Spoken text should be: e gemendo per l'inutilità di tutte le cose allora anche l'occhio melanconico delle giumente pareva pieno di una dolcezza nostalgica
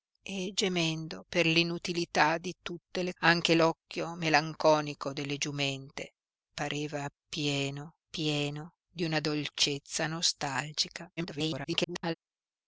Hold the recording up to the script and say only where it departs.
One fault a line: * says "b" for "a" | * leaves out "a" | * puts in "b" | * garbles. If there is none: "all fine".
* leaves out "cose allora"
* puts in "pieno"
* garbles